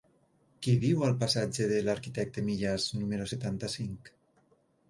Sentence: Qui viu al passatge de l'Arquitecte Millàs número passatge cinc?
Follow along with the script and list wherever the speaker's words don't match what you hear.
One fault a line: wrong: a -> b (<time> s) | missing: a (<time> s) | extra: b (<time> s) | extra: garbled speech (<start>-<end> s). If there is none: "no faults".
wrong: passatge -> setanta (3.3 s)